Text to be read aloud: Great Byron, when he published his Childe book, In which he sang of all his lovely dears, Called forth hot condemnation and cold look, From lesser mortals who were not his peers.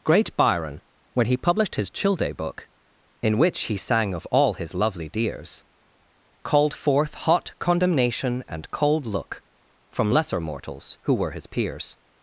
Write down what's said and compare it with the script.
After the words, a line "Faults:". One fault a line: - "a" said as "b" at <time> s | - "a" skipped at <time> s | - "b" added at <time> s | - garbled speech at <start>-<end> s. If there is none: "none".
Great Byron, when he published his Childe book, In which he sang of all his lovely dears, Called forth hot condemnation and cold look, From lesser mortals who were his peers.
Faults:
- "not" skipped at 11.3 s